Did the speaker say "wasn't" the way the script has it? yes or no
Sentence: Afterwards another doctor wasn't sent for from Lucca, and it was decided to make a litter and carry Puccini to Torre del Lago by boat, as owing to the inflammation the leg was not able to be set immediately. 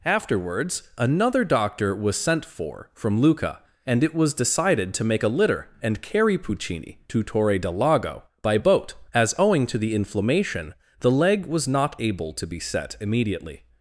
no